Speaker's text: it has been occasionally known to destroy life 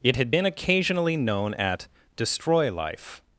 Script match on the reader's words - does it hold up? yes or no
no